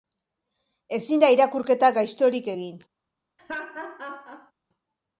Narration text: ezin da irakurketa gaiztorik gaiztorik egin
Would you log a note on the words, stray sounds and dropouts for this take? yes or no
yes